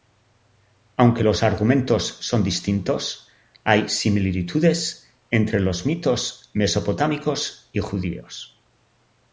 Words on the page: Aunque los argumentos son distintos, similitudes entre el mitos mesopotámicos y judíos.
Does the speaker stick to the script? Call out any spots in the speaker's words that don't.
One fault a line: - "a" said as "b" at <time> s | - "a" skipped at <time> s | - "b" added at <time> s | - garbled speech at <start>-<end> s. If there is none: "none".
- "hay" added at 3.6 s
- "el" said as "los" at 5.6 s